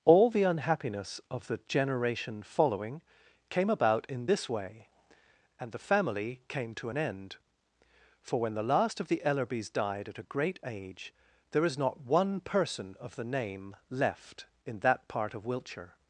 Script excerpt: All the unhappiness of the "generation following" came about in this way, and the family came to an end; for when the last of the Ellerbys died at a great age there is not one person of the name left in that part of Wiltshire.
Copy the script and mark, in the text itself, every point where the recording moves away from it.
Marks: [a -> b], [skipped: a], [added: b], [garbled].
All the unhappiness of the "generation following" came about in this way, and the family came to an end; for when the last of the Ellerbys died at a great age there is not one person of the name left in that part of Wiltshire.